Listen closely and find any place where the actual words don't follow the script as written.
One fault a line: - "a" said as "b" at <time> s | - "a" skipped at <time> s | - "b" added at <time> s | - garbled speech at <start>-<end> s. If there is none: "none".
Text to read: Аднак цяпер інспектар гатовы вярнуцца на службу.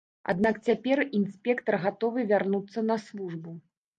none